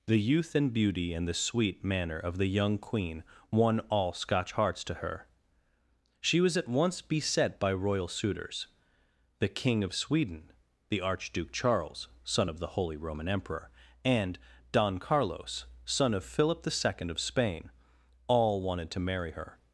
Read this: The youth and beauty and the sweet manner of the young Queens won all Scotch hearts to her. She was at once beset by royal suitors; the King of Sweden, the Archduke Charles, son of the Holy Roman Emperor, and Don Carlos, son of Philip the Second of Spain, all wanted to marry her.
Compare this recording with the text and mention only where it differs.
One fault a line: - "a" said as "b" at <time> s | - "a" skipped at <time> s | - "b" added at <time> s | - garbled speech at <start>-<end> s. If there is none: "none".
- "Queens" said as "Queen" at 2.8 s